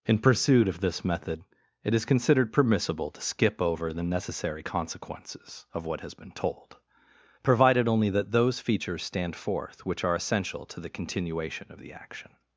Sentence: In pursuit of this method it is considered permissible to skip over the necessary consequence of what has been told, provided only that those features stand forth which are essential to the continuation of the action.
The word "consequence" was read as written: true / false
false